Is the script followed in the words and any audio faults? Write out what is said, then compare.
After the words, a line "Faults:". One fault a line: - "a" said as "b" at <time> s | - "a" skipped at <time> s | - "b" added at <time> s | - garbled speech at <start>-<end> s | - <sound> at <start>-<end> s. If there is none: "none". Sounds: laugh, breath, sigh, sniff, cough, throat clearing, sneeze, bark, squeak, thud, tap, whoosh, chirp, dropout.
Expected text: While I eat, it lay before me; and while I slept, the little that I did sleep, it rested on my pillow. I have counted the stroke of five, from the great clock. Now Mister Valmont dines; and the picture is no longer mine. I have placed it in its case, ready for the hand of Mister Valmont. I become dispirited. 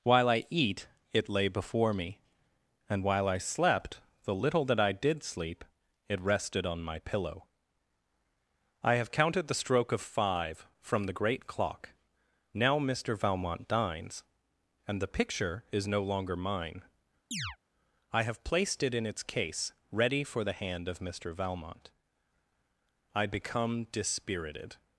While I eat, it lay before me; and while I slept, the little that I did sleep, it rested on my pillow. I have counted the stroke of five, from the great clock. Now Mister Valmont dines; and the picture is no longer mine. I have placed it in its case, ready for the hand of Mister Valmont. I become dispirited.
Faults:
- chirp at 17.3-17.6 s